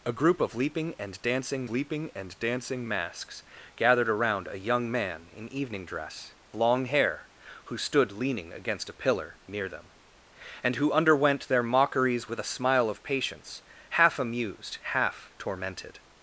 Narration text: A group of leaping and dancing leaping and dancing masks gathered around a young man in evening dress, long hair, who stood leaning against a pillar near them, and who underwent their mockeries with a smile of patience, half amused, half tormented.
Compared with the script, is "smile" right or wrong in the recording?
right